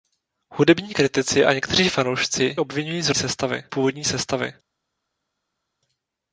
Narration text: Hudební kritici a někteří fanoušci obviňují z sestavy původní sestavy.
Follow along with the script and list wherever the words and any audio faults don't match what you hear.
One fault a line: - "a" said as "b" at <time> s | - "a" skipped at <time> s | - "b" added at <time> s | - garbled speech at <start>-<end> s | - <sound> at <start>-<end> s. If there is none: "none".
none